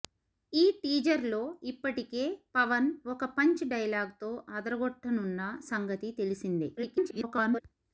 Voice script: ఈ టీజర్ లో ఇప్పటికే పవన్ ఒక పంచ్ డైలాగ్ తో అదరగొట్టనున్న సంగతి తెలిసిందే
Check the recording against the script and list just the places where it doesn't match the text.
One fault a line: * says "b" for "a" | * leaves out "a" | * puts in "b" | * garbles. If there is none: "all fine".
* garbles